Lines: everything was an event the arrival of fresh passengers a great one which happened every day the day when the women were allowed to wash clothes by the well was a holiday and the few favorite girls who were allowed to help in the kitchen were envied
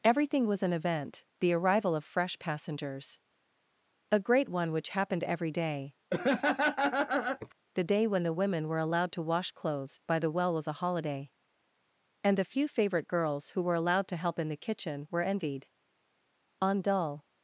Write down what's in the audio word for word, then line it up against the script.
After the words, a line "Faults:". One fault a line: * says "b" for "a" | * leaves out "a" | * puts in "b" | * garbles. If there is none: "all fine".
everything was an event the arrival of fresh passengers a great one which happened every day the day when the women were allowed to wash clothes by the well was a holiday and the few favorite girls who were allowed to help in the kitchen were envied on dull
Faults:
* puts in "on dull"